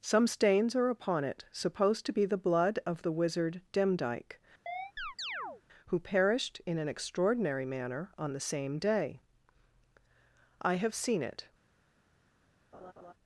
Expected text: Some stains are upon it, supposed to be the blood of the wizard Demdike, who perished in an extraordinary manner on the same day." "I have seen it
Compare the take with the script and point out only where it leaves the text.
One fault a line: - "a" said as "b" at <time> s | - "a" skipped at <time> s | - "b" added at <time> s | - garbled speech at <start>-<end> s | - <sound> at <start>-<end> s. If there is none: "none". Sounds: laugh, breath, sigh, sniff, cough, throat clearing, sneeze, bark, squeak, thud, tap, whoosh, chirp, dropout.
- chirp at 4.7-5.6 s
- laugh at 12.7-13.1 s